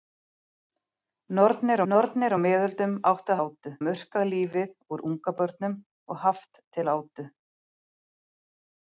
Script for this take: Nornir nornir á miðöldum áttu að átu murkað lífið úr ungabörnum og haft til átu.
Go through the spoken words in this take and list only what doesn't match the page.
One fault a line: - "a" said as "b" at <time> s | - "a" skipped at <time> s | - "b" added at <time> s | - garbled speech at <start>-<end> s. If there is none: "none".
none